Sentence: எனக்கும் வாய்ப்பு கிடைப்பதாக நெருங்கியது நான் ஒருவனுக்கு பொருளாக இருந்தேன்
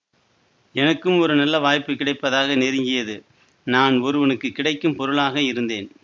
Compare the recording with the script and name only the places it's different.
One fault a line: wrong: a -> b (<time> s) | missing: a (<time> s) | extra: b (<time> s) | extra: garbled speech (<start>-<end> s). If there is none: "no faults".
extra: ஒரு நல்ல (1.2 s)
extra: கிடைக்கும் (4.5 s)